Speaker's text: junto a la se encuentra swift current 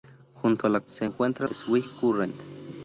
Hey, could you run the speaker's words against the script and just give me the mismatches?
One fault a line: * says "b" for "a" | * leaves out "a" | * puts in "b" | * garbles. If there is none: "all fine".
all fine